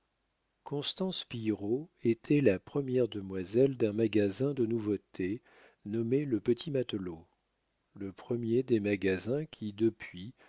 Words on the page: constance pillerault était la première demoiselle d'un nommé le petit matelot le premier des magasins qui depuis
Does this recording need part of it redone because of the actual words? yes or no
yes